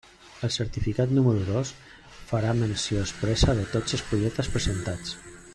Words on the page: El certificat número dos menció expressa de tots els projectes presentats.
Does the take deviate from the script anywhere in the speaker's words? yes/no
yes